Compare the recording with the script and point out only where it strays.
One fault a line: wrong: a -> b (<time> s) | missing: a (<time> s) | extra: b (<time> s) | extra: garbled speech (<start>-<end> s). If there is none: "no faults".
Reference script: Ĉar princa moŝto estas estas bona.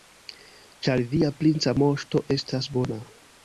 extra: via (1.1 s)
missing: estas (2.8 s)